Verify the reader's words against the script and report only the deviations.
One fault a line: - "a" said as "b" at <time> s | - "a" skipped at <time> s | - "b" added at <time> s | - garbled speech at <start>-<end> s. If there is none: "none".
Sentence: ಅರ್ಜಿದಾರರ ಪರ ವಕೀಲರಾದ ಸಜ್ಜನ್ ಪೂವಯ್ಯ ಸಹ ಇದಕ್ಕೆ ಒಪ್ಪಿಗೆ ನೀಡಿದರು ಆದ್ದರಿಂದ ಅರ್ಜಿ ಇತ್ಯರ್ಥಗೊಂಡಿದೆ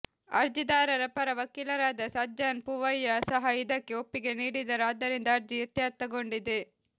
none